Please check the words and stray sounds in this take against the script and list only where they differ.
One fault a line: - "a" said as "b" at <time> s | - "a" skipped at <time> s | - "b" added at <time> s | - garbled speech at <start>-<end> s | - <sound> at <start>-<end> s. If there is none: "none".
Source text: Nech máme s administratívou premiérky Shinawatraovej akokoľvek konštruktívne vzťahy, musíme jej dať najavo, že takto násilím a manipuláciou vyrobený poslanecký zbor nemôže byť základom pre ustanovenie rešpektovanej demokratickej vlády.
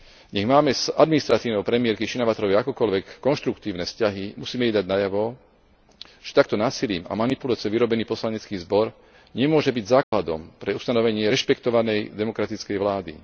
- dropout at 10.0-10.1 s